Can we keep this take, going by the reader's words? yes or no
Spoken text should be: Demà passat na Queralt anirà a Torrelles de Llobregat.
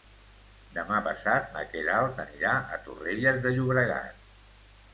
yes